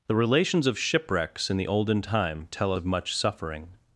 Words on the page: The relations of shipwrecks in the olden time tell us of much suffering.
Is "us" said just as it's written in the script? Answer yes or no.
no